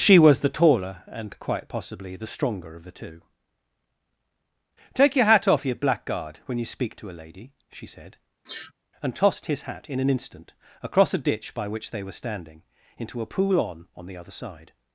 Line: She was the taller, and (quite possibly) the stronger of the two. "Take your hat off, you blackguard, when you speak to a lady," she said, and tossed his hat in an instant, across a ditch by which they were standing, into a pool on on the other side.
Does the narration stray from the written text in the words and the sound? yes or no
yes